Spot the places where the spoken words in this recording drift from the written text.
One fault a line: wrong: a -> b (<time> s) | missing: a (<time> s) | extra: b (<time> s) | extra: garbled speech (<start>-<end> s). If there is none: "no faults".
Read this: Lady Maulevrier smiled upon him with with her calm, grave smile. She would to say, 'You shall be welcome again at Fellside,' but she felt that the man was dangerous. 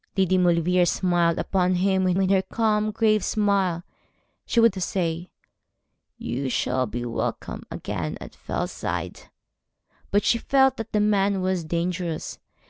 no faults